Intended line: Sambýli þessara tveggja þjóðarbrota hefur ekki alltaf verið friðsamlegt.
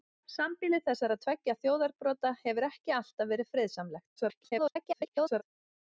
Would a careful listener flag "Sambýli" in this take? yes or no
no